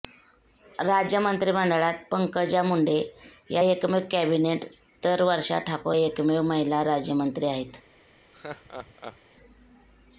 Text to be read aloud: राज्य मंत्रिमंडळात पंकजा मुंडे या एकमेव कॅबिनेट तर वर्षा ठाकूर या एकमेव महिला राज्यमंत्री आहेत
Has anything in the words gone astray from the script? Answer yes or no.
yes